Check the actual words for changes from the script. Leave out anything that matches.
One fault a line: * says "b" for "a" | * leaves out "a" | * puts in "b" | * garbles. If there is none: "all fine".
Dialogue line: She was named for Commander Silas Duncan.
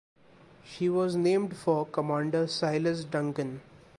all fine